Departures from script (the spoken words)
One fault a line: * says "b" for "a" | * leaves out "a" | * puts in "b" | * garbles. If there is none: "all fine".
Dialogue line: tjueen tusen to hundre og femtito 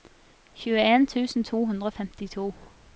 all fine